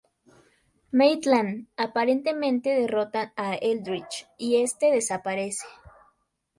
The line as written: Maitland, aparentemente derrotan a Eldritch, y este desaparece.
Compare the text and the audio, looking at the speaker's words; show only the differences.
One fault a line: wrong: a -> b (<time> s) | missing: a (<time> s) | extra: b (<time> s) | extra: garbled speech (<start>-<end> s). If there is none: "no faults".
no faults